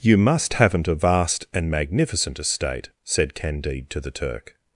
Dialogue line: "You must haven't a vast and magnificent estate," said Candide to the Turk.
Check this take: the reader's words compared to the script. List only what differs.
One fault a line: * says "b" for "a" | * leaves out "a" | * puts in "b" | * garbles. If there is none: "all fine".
all fine